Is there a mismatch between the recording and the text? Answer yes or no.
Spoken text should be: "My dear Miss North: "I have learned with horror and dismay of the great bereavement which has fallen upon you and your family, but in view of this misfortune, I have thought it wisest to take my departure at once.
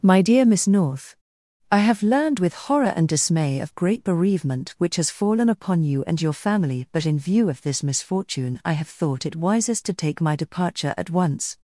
yes